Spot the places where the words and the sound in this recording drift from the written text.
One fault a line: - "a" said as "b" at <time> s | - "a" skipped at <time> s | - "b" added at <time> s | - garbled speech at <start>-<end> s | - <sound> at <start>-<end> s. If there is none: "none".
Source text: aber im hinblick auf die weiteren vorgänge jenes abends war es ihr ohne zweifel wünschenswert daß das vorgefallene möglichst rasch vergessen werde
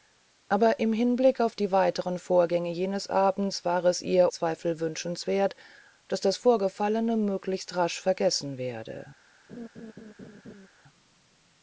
- "ohne" skipped at 4.3 s
- laugh at 9.5-10.7 s